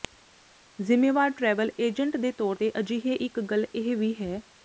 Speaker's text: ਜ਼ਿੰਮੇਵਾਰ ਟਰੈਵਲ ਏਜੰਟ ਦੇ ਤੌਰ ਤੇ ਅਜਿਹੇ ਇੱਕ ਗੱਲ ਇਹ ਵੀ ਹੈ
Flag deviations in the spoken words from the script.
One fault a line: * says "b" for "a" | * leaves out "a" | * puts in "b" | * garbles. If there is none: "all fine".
all fine